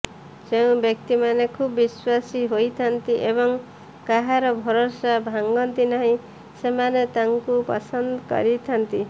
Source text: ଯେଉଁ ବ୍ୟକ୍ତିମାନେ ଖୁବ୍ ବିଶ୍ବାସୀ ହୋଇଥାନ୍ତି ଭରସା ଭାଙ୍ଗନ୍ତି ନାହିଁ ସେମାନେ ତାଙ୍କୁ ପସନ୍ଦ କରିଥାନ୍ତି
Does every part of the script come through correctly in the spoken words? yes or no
no